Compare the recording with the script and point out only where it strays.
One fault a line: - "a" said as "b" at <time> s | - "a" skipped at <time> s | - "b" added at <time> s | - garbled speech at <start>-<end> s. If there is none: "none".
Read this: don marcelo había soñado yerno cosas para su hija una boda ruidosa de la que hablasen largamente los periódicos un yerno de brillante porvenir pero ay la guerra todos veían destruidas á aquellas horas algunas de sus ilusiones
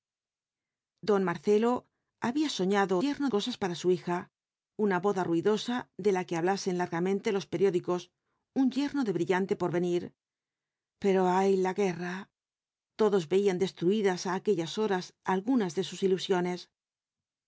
none